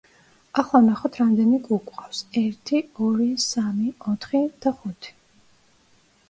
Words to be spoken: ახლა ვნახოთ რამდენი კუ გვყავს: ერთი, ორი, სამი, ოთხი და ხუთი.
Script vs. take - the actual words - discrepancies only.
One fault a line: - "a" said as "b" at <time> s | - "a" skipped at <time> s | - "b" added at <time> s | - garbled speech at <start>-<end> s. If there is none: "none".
none